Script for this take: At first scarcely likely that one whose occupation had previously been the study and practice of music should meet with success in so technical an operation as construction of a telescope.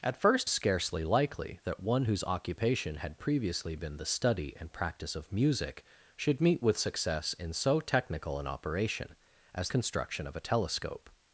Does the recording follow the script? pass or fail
pass